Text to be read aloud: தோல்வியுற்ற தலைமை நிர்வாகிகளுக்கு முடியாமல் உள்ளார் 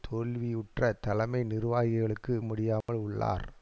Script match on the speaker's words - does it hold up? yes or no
yes